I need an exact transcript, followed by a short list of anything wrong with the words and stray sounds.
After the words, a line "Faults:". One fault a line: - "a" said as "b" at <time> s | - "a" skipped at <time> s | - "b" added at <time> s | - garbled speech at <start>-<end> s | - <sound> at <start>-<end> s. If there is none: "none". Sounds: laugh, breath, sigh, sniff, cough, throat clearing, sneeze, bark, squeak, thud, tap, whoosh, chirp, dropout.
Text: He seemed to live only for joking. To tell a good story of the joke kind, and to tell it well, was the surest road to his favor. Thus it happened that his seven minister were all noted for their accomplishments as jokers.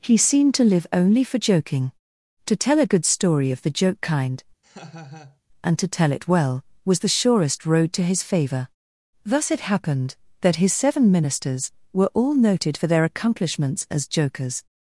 He seemed to live only for joking. To tell a good story of the joke kind, and to tell it well, was the surest road to his favor. Thus it happened that his seven ministers were all noted for their accomplishments as jokers.
Faults:
- laugh at 4.6-5.4 s
- "minister" said as "ministers" at 11.1 s